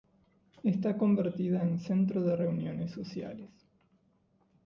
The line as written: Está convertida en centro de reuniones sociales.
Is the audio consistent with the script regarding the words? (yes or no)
yes